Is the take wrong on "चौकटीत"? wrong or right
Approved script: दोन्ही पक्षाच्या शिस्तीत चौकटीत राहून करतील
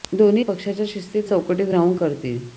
right